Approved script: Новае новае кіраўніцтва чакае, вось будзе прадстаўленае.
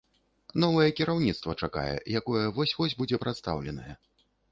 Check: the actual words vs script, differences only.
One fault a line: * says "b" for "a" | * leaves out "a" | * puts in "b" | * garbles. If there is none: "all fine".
* leaves out "новае"
* puts in "якое вось"